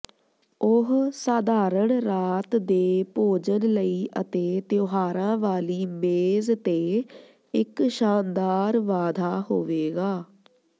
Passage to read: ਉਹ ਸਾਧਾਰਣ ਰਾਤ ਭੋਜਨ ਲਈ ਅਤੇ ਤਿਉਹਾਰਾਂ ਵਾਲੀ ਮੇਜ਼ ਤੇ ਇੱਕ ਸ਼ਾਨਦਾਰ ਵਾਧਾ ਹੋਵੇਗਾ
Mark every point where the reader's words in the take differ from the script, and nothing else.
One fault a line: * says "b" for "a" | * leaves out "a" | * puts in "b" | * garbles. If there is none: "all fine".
* puts in "ਦੇ"